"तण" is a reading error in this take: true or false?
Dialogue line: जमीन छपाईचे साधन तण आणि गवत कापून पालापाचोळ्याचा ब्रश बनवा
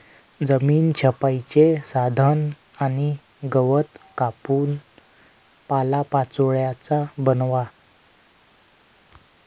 true